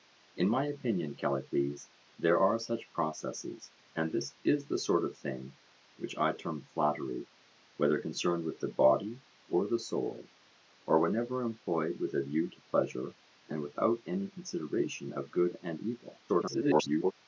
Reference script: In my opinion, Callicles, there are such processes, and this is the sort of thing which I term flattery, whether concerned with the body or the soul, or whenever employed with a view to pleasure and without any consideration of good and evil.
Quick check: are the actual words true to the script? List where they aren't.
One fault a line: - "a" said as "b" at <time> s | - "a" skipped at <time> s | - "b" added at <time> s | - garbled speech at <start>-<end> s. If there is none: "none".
- garbled speech at 16.3-17.1 s